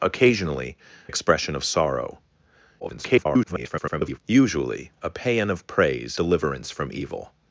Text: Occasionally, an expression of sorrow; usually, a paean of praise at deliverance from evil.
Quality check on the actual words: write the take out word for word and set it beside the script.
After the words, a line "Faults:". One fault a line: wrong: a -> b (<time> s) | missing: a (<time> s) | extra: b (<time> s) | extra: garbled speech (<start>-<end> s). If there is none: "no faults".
Occasionally, expression of sorrow; [garbled] usually, a paean of praise deliverance from evil.
Faults:
missing: an (0.8 s)
extra: garbled speech (2.8-4.2 s)
missing: at (6.2 s)